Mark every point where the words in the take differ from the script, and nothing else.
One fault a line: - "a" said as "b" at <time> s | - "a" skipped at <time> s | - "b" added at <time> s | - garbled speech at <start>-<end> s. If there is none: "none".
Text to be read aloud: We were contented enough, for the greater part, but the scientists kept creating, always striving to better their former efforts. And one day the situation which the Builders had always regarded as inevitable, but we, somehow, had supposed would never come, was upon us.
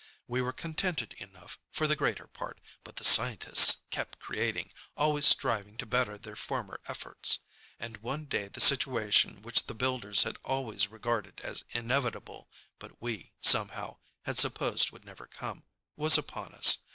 none